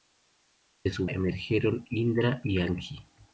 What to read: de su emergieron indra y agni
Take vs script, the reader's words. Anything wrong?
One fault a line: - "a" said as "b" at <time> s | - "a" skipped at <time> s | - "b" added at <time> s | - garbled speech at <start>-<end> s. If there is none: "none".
none